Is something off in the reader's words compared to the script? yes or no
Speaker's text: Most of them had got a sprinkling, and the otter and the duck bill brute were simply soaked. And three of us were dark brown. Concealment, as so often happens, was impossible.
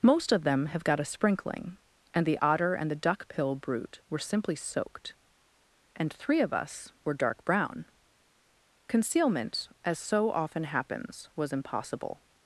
yes